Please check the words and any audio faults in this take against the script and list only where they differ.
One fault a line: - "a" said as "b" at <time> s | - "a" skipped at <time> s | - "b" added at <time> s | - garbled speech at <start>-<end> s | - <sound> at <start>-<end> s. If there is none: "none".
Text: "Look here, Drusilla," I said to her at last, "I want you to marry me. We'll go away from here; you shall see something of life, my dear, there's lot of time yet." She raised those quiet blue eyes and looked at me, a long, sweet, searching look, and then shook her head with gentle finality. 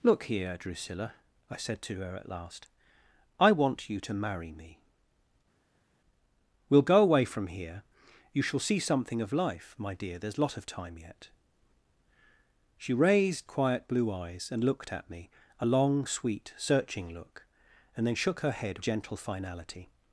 - "those" skipped at 13.5 s
- "with" skipped at 18.8 s